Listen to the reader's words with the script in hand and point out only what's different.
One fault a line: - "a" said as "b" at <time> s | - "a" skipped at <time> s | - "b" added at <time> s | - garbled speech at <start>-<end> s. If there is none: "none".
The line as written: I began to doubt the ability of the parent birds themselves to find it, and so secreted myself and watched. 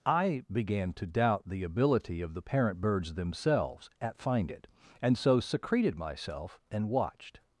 - "to" said as "at" at 4.0 s